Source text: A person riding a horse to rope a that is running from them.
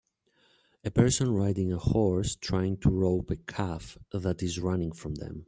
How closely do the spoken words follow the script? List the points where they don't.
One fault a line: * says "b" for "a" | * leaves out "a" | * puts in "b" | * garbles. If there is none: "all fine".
* puts in "trying"
* puts in "calf"